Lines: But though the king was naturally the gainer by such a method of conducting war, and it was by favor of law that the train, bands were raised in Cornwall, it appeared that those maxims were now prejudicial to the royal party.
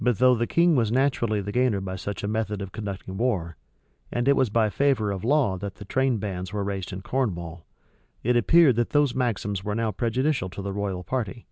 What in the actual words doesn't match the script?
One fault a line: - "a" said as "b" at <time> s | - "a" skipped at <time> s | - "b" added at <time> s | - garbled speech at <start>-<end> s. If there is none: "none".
none